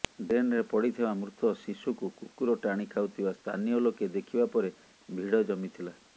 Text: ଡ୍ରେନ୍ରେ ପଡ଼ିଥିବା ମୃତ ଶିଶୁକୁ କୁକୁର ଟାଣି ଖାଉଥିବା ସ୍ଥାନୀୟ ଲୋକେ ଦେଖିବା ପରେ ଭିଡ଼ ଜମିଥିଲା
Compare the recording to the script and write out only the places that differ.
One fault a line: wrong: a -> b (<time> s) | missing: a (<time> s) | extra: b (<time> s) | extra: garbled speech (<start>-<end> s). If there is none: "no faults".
no faults